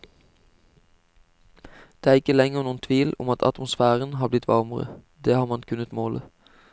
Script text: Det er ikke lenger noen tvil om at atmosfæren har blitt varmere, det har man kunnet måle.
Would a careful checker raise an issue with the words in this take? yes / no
no